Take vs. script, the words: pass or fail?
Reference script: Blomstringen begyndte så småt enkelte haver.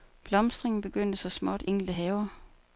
pass